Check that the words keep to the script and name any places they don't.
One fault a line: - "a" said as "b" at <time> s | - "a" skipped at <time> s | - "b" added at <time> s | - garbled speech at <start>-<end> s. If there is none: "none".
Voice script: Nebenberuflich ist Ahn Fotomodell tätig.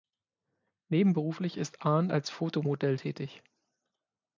- "als" added at 2.1 s